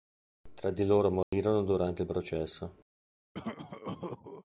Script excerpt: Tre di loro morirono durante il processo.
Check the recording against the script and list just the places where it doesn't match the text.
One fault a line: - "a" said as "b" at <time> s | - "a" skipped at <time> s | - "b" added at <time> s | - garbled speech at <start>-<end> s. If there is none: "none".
none